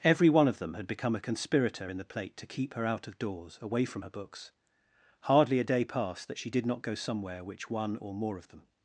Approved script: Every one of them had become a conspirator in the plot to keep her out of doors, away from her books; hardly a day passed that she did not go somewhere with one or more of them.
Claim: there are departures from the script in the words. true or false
true